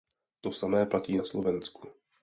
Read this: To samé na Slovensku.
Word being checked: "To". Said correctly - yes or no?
yes